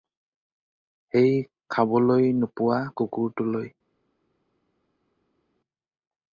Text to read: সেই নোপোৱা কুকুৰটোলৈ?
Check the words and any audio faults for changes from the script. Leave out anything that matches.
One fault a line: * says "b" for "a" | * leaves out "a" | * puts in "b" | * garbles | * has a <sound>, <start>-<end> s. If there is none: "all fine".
* puts in "খাবলৈ"